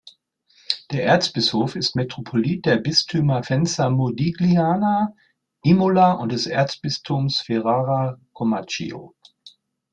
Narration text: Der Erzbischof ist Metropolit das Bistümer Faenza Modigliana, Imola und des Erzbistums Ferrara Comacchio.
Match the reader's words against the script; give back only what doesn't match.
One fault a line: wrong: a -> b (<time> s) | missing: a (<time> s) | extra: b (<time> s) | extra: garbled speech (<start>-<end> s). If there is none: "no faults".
wrong: das -> der (2.7 s)